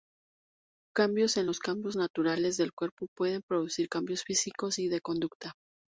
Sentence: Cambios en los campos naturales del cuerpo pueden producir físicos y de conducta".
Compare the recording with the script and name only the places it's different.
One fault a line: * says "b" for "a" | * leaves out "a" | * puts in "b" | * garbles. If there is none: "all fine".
* puts in "cambios"